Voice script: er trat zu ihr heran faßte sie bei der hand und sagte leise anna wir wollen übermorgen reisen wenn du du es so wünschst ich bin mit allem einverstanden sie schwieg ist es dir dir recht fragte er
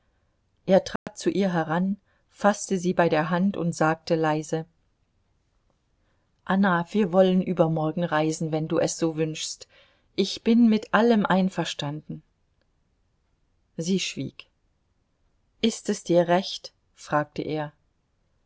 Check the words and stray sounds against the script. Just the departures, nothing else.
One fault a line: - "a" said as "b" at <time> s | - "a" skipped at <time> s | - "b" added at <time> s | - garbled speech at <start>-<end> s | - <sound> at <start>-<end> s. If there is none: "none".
- dropout at 1.0-1.1 s
- "du" skipped at 8.8 s
- "dir" skipped at 16.3 s